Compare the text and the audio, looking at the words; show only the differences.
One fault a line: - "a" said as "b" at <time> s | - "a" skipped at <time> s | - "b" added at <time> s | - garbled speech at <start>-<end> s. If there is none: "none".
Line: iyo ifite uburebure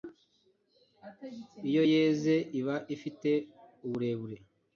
- "yeze iba" added at 1.9 s